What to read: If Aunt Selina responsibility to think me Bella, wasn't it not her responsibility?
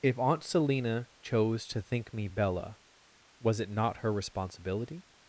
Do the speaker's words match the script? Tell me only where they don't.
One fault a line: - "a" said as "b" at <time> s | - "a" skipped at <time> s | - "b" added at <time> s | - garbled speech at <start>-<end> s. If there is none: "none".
- "responsibility" said as "chose" at 1.2 s
- "wasn't" said as "was" at 3.4 s